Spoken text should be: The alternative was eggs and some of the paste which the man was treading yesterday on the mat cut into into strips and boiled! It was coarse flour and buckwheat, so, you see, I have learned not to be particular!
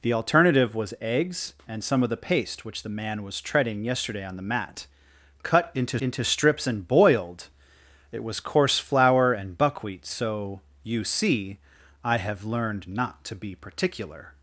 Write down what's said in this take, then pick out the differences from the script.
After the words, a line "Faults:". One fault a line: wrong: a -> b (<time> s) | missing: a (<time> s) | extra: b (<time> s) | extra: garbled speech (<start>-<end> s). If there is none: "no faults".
The alternative was eggs and some of the paste which the man was treading yesterday on the mat cut into into strips and boiled! It was coarse flour and buckwheat, so, you see, I have learned not to be particular!
Faults:
no faults